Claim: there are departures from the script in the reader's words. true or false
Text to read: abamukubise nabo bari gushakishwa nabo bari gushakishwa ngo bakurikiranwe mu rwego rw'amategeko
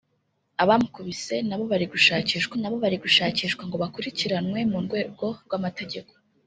false